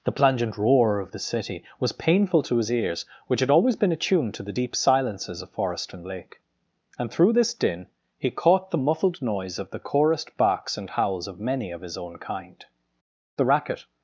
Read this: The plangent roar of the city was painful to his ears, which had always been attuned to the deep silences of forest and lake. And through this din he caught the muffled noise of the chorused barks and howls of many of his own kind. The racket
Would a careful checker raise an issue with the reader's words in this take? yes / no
no